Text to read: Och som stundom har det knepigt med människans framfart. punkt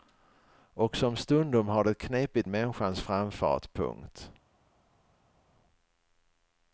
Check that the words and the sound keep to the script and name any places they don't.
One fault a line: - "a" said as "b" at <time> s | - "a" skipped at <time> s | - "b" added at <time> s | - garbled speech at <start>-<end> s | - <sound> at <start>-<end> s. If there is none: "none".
- "med" skipped at 2.5 s